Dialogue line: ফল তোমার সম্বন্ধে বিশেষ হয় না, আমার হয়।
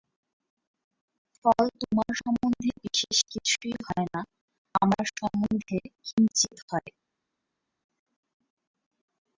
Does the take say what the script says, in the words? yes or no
no